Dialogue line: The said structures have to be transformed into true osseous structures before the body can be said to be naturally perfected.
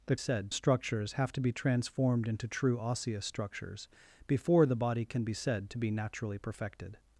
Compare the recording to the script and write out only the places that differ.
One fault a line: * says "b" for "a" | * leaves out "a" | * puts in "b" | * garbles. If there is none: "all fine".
all fine